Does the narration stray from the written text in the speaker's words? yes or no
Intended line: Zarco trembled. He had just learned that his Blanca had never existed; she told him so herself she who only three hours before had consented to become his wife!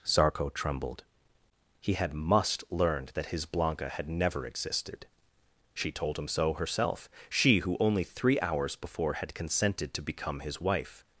yes